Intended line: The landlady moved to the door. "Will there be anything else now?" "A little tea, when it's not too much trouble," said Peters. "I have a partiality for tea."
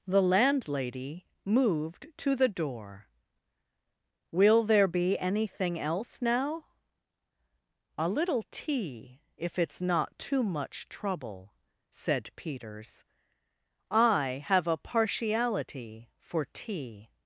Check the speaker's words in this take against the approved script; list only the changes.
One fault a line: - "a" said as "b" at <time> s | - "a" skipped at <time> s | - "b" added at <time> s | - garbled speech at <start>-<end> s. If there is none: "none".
- "when" said as "if" at 9.4 s